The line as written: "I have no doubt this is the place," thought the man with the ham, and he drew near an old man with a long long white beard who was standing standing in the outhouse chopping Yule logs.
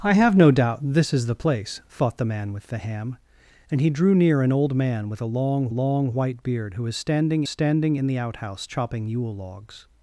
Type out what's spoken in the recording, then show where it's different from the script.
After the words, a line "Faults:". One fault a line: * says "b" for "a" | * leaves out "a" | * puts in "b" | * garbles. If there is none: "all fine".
"I have no doubt this is the place," thought the man with the ham, and he drew near an old man with a long long white beard who was standing standing in the outhouse chopping Yule logs.
Faults:
all fine